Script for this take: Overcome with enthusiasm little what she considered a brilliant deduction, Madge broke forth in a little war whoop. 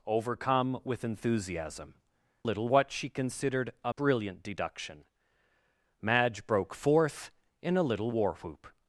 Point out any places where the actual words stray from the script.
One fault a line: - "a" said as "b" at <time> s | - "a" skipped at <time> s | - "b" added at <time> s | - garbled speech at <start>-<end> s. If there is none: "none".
none